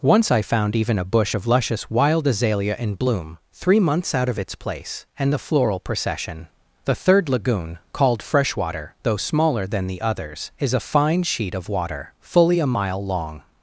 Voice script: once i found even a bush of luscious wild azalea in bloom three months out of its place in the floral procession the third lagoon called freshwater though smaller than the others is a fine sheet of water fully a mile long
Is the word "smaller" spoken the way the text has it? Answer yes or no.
yes